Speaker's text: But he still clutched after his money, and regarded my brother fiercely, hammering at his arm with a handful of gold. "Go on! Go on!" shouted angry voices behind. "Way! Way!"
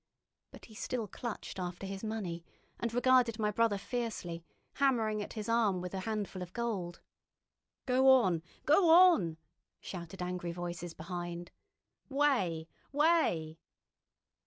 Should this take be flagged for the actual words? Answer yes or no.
no